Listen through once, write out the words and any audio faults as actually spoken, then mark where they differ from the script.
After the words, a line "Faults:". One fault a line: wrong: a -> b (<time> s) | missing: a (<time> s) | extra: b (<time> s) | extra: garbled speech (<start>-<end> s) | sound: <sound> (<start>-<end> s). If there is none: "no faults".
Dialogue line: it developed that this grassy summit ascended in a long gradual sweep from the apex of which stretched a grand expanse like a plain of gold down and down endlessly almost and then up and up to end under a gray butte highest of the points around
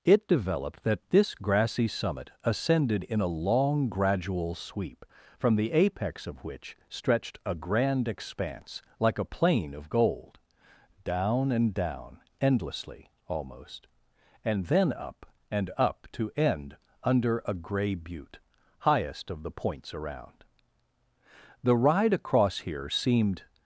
it developed that this grassy summit ascended in a long gradual sweep from the apex of which stretched a grand expanse like a plain of gold down and down endlessly almost and then up and up to end under a gray butte highest of the points around the ride across here seemed
Faults:
extra: the ride across here seemed (21.6 s)